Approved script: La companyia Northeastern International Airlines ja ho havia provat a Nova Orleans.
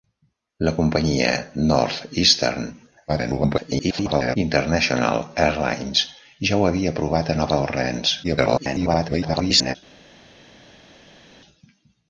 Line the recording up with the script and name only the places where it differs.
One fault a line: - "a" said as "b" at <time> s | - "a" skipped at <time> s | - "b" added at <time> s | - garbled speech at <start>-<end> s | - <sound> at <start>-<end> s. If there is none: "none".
- garbled speech at 3.1-4.4 s
- garbled speech at 8.2-9.8 s